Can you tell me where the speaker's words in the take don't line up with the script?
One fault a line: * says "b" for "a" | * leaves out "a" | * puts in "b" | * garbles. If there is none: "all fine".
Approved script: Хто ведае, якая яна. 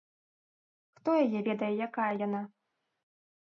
* puts in "яе"